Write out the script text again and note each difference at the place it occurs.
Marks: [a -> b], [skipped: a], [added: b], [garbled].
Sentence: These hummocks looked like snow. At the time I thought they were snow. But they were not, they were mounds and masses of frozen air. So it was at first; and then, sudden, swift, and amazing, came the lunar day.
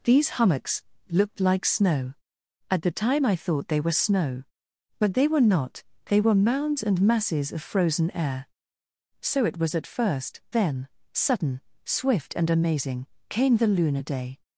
These hummocks looked like snow. At the time I thought they were snow. But they were not, they were mounds and masses of frozen air. So it was at first; [skipped: and] then, sudden, swift, and amazing, came the lunar day.